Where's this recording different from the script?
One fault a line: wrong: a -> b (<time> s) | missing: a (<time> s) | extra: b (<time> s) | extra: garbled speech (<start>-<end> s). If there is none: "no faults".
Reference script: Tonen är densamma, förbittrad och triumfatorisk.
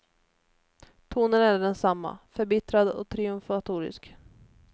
no faults